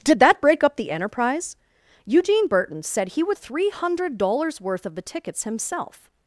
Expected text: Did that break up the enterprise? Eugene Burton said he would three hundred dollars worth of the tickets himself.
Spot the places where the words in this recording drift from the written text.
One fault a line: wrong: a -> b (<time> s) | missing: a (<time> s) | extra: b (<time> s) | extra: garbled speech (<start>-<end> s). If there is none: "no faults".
no faults